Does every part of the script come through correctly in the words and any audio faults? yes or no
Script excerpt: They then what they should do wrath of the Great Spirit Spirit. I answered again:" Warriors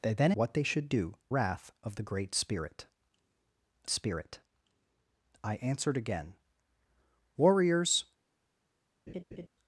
no